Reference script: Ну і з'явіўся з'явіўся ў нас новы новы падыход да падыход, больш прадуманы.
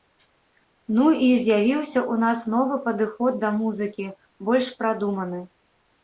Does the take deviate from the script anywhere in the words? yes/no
yes